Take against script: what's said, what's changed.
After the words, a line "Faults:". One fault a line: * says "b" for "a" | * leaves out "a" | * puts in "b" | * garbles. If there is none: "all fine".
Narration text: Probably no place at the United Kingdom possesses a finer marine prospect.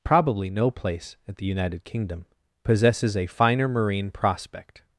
Probably no place at the United Kingdom possesses a finer marine prospect.
Faults:
all fine